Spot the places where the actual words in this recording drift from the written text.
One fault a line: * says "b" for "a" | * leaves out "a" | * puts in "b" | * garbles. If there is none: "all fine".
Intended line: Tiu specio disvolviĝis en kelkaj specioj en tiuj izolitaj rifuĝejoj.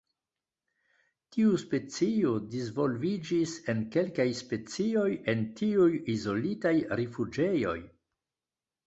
all fine